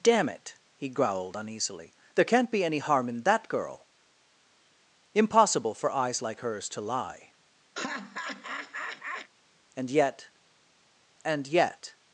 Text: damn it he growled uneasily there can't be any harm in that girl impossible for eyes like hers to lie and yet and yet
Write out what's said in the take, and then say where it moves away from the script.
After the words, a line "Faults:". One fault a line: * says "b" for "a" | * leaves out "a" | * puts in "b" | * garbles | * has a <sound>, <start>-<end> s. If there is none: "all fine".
damn it he growled uneasily there can't be any harm in that girl impossible for eyes like hers to lie and yet and yet
Faults:
* has a laugh, 7.8-9.3 s